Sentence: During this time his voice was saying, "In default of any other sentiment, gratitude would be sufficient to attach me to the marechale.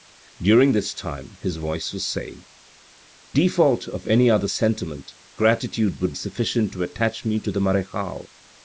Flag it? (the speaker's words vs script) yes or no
yes